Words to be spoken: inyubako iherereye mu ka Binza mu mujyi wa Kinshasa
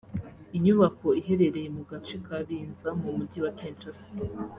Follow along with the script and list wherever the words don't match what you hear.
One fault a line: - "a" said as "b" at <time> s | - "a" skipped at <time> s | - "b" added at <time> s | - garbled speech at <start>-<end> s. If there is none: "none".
- "gace" added at 1.9 s